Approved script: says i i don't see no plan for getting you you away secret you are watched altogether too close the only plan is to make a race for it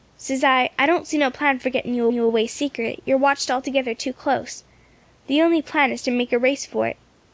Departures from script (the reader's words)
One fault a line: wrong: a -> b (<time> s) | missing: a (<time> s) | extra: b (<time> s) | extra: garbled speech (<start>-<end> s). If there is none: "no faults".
no faults